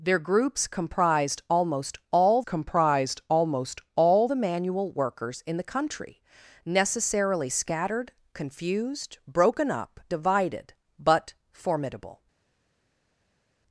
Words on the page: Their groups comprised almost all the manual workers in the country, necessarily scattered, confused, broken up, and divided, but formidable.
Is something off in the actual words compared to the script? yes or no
yes